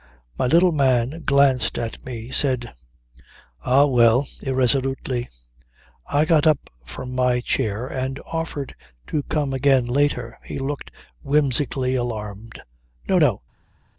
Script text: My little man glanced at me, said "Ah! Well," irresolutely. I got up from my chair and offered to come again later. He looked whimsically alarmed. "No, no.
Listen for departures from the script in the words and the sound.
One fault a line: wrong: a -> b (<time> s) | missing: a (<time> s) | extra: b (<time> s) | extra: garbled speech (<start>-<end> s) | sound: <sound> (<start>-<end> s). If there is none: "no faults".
no faults